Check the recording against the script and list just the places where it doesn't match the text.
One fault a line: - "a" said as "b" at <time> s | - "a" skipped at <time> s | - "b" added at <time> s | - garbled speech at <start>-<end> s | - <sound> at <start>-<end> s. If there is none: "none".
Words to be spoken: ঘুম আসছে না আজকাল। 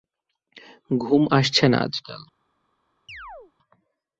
- chirp at 3.1-3.5 s